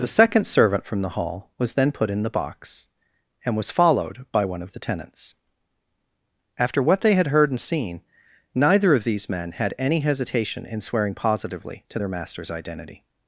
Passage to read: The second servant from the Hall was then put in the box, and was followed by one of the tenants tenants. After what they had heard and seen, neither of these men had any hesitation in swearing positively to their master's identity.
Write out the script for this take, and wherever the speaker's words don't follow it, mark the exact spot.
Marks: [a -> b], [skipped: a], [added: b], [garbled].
The second servant from the Hall was then put in the box, and was followed by one of the tenants [skipped: tenants.] After what they had heard and seen, neither of these men had any hesitation in swearing positively to their master's identity.